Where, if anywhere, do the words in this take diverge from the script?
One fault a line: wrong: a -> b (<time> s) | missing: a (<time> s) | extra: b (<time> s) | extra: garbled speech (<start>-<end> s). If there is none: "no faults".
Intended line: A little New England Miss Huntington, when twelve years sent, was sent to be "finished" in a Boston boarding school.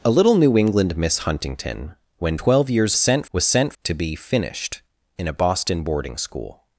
no faults